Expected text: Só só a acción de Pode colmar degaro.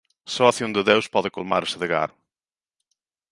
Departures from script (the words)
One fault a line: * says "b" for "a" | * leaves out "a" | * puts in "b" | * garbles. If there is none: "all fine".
* leaves out "só"
* puts in "Deus"
* puts in "ese"